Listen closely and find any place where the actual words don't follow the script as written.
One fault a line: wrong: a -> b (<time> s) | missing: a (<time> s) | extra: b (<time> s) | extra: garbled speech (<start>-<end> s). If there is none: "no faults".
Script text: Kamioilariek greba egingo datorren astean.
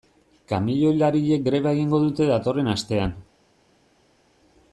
extra: dute (2.1 s)